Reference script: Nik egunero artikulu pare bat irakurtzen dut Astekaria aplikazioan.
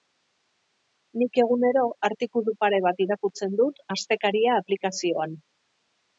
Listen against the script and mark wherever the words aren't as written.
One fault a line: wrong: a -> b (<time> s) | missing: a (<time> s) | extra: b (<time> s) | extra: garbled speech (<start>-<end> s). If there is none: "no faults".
no faults